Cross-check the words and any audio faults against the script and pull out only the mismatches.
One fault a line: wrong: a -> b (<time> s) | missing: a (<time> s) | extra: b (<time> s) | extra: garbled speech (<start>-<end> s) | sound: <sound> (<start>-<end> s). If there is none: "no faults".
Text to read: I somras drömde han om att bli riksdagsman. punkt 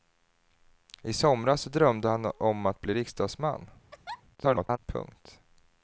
sound: laugh (3.9-4.2 s)
extra: garbled speech (4.4-4.8 s)